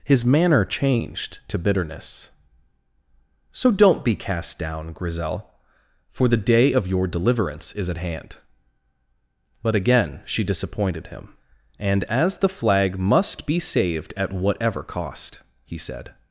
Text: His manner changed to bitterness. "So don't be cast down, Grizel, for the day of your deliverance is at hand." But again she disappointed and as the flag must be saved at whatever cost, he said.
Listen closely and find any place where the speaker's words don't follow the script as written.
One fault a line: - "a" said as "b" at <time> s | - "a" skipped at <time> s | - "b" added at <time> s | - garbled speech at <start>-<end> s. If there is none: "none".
- "him" added at 11.1 s